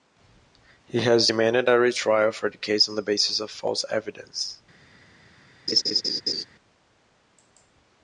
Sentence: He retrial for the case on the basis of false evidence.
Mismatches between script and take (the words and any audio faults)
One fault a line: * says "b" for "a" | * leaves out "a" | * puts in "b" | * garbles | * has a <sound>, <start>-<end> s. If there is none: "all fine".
* puts in "has demanded a"
* has a laugh, 5.7-6.4 s